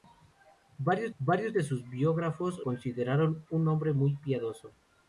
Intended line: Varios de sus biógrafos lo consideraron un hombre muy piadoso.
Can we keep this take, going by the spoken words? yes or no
no